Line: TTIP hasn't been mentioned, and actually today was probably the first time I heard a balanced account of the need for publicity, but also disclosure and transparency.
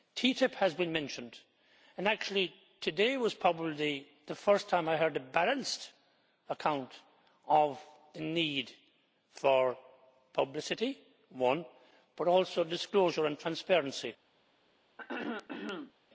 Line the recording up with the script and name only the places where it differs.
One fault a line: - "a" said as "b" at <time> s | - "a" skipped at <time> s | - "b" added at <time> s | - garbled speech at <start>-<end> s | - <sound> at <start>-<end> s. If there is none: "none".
- "hasn't" said as "has" at 0.6 s
- throat clearing at 15.0-15.9 s